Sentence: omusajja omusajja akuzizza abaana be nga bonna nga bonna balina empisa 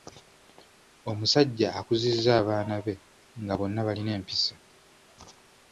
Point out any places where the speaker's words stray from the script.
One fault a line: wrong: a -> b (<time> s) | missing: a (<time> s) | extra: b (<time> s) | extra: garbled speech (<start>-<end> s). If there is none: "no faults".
missing: omusajja (1.7 s)
missing: nga bonna (3.8 s)